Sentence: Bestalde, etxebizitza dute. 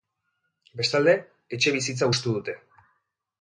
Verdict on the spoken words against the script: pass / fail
fail